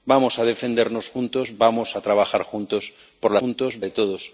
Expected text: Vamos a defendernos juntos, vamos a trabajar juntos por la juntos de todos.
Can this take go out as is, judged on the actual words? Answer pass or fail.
pass